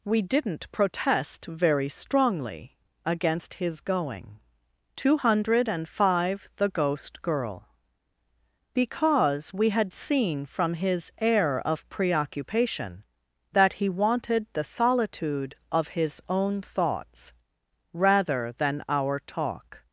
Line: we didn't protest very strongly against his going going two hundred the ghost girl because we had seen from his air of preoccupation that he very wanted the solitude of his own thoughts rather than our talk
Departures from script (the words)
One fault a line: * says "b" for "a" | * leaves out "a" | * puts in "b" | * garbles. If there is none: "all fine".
* leaves out "going"
* puts in "five"
* leaves out "very"